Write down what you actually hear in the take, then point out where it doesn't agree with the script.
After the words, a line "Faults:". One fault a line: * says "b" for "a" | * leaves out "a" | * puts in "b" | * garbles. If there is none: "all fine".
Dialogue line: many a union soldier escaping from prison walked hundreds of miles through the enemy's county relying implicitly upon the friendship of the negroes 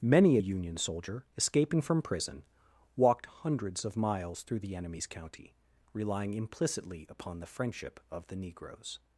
many a union soldier escaping from prison walked hundreds of miles through the enemy's county relying implicitly upon the friendship of the negroes
Faults:
all fine